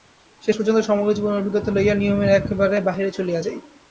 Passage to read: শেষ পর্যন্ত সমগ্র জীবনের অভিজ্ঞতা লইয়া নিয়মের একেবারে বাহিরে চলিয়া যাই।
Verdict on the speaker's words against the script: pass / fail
pass